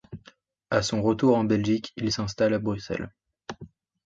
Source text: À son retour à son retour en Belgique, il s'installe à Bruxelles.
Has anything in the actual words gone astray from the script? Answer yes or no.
yes